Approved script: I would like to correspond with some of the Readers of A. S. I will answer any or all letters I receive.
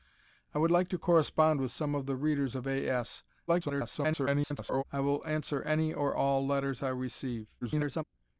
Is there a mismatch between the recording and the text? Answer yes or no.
yes